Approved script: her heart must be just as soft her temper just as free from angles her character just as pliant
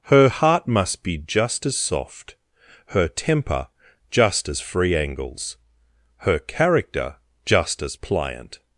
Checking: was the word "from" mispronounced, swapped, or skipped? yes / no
yes